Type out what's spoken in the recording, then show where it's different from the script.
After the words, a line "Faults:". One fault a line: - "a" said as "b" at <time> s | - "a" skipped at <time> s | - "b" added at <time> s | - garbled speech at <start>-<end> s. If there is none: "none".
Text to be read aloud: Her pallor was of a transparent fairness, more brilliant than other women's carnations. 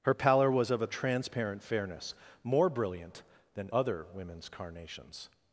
Her pallor was of a transparent fairness, more brilliant than other women's carnations.
Faults:
none